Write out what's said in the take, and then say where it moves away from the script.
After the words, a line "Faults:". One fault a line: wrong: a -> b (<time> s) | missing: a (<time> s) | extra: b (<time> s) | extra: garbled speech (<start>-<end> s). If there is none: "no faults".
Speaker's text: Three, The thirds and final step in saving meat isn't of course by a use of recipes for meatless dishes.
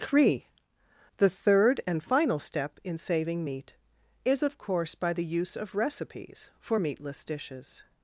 Three, The third and final step in saving meat is of course by the use of recipes for meatless dishes.
Faults:
wrong: thirds -> third (1.3 s)
wrong: isn't -> is (4.2 s)
wrong: a -> the (5.1 s)